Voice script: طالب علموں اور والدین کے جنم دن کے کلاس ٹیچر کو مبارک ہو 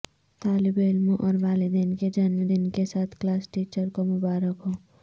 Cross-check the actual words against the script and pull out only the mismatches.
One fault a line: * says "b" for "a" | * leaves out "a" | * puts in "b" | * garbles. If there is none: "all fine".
* puts in "ساتھ"